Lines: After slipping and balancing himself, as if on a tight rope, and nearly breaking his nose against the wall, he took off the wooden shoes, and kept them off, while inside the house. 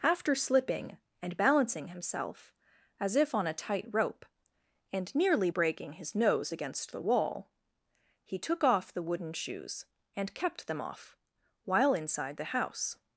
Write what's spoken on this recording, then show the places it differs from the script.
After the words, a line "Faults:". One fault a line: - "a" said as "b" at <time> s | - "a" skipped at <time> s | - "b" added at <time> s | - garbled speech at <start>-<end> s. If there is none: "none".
After slipping and balancing himself, as if on a tight rope, and nearly breaking his nose against the wall, he took off the wooden shoes, and kept them off, while inside the house.
Faults:
none